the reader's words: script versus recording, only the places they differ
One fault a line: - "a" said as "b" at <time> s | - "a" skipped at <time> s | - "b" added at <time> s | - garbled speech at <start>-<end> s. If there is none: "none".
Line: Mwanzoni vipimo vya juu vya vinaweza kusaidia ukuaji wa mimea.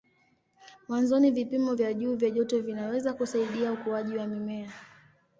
- "joto" added at 2.3 s